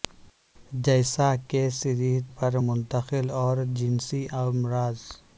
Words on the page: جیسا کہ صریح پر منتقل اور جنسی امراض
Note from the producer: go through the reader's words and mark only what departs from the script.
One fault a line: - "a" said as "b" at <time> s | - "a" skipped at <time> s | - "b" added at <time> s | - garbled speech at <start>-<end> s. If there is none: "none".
none